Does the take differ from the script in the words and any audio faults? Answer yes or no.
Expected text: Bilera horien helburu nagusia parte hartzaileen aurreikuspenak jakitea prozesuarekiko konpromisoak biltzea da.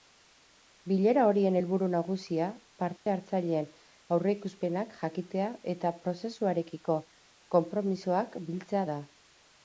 yes